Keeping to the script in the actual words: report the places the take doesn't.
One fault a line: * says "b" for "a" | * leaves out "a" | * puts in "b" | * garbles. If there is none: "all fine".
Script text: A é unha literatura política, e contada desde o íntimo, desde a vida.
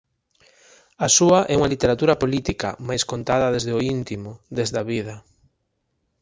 * puts in "súa"
* says "mais" for "e"